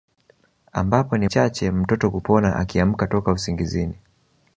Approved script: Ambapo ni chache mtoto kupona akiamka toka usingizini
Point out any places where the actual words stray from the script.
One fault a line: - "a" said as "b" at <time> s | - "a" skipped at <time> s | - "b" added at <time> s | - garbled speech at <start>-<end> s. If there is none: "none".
none